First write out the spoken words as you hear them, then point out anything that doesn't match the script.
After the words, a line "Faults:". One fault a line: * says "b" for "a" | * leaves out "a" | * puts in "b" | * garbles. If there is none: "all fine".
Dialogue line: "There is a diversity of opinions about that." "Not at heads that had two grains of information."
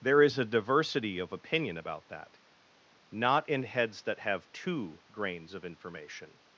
"There is a diversity of opinion about that." "Not in heads that have two grains of information."
Faults:
* says "opinion" for "opinions"
* says "in" for "at"
* says "have" for "had"